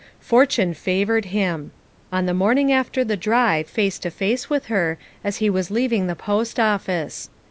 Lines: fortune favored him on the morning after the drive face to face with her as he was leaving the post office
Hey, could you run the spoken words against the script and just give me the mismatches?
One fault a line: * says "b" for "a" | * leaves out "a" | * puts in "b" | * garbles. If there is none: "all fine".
all fine